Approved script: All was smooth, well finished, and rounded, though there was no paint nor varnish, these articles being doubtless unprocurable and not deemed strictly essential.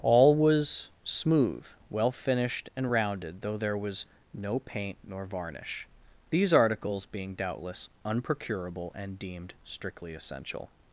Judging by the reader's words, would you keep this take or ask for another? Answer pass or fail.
fail